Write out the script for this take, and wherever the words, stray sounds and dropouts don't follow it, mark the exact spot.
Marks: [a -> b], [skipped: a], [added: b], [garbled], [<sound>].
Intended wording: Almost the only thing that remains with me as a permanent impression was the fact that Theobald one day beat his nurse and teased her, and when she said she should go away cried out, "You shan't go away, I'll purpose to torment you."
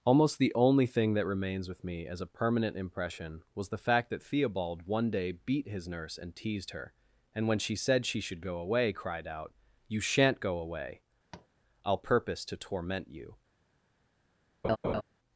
Almost the only thing that remains with me as a permanent impression was the fact that Theobald one day beat his nurse and teased her, and when she said she should go away cried out, "You shan't go away, [tap] I'll purpose to torment you." [laugh]